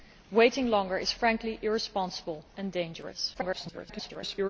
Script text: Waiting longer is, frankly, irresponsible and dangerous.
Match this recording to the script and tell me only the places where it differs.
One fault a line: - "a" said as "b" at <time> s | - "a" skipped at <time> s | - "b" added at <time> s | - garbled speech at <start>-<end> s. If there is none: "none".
- garbled speech at 3.3-4.5 s